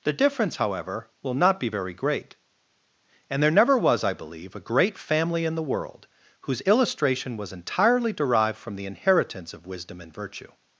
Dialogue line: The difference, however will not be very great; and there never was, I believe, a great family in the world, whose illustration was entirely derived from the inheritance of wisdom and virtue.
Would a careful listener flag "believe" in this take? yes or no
no